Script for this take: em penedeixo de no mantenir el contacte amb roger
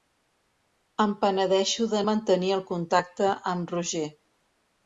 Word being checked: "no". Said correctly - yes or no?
no